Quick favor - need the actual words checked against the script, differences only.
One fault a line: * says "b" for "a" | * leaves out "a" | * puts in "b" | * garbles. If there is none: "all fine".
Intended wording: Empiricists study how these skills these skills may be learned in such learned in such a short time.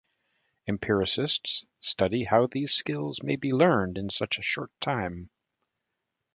* leaves out "these skills"
* leaves out "learned in such"